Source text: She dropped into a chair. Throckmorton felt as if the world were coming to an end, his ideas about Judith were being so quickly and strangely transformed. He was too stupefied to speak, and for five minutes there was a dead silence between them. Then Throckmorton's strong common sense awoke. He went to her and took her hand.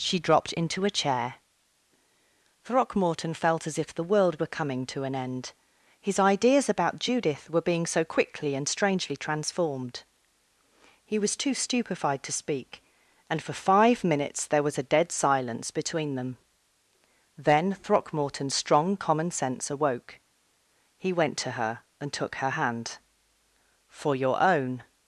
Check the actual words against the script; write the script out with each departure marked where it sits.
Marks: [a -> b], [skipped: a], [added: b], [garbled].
She dropped into a chair. Throckmorton felt as if the world were coming to an end, his ideas about Judith were being so quickly and strangely transformed. He was too stupefied to speak, and for five minutes there was a dead silence between them. Then Throckmorton's strong common sense awoke. He went to her and took her hand. [added: For your own]